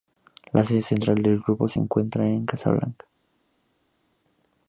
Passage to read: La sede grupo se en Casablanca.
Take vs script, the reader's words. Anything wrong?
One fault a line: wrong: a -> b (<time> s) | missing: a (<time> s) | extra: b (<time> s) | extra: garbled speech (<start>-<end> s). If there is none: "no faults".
extra: central del (0.8 s)
extra: encuentra (1.8 s)